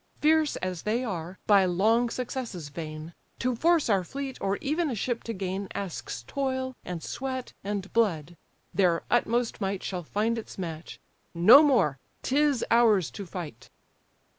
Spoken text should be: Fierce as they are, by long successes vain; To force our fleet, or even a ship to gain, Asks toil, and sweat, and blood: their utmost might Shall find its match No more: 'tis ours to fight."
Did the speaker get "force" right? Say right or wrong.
right